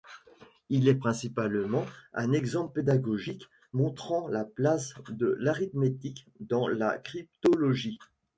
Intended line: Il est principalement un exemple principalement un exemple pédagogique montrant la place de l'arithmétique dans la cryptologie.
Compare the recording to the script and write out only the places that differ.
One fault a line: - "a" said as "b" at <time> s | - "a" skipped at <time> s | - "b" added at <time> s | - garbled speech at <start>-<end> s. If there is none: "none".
- "principalement un exemple" skipped at 2.7 s